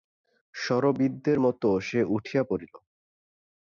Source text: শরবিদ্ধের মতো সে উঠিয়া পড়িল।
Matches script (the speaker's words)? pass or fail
pass